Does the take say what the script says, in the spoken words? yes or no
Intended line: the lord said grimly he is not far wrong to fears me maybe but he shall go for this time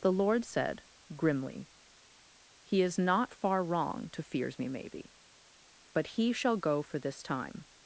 yes